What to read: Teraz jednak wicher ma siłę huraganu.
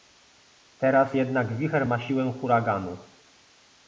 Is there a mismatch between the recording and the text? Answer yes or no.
no